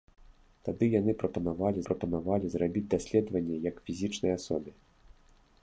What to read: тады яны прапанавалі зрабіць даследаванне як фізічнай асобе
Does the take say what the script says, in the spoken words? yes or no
no